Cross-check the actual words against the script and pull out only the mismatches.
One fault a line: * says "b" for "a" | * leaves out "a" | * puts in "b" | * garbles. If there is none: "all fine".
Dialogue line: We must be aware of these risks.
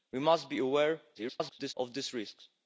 * garbles